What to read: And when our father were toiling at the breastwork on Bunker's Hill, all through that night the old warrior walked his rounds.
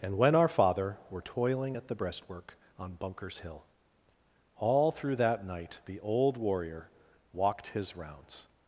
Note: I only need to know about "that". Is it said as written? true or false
true